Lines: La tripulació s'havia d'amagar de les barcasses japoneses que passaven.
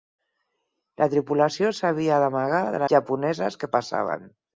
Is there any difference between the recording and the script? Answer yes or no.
yes